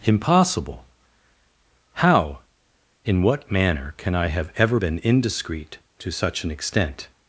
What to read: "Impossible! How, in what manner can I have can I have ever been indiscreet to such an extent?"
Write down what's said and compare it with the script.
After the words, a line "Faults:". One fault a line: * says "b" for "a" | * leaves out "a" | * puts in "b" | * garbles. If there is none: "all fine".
"Impossible! How, in what manner can I have ever been indiscreet to such an extent?"
Faults:
* leaves out "can I have"